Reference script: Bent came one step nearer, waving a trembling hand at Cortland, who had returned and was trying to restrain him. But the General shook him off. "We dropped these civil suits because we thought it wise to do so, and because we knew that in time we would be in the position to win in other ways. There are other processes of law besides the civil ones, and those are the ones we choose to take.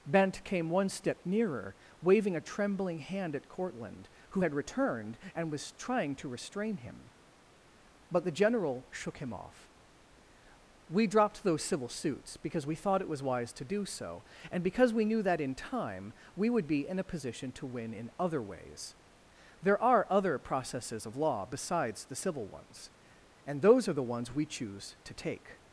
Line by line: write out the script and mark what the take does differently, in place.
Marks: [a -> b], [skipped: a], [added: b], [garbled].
Bent came one step nearer, waving a trembling hand at Cortland, who had returned and was trying to restrain him. But the General shook him off. "We dropped [these -> those] civil suits because we thought it [added: was] wise to do so, and because we knew that in time we would be in [the -> a] position to win in other ways. There are other processes of law besides the civil ones, and those are the ones we choose to take.